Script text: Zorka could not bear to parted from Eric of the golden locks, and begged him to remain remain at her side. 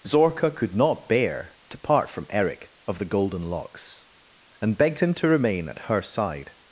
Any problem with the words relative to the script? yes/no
yes